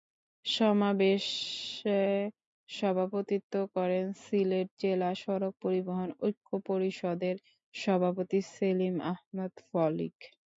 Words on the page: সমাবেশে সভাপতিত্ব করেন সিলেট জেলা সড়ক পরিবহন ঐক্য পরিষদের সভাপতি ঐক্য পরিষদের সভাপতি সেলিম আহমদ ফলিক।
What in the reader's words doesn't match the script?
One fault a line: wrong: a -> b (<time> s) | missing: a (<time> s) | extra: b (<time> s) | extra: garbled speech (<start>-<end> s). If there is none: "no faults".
missing: ঐক্য পরিষদের সভাপতি (8.4 s)